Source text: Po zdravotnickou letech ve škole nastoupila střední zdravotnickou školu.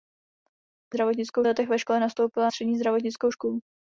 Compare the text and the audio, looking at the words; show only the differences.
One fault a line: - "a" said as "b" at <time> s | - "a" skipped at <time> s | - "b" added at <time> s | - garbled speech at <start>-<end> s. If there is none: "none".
none